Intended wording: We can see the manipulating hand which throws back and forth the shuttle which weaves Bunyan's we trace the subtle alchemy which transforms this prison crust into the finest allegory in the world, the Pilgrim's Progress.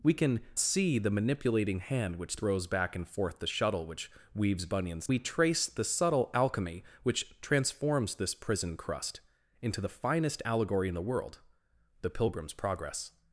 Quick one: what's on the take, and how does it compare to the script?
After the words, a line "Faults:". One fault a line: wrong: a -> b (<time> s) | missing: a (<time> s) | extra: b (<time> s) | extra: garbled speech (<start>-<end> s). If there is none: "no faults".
We can see the manipulating hand which throws back and forth the shuttle which weaves Bunyan's we trace the subtle alchemy which transforms this prison crust into the finest allegory in the world, the Pilgrim's Progress.
Faults:
no faults